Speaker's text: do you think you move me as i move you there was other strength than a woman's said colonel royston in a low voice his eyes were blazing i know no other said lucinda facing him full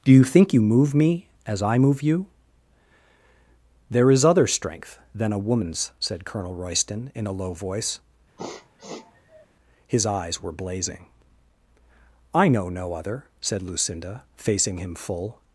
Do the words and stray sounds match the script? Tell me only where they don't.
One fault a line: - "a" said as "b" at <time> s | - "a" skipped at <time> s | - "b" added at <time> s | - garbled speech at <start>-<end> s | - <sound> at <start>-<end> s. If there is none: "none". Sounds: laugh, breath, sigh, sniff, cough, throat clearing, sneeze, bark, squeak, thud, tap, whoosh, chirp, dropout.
- "was" said as "is" at 4.1 s
- sniff at 8.4-9.5 s